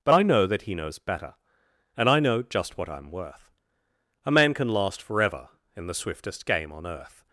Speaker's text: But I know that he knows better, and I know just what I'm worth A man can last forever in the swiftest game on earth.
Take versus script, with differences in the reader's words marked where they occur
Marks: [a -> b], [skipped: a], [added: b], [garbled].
But I know that he knows better, and I know just what I'm worth A man can last forever in the swiftest game on earth.